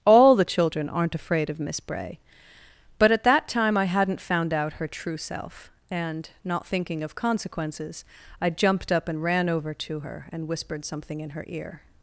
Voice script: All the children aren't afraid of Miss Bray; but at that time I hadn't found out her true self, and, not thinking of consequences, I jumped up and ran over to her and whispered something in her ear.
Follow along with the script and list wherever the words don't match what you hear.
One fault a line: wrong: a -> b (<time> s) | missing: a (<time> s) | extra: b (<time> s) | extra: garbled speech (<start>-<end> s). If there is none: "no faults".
no faults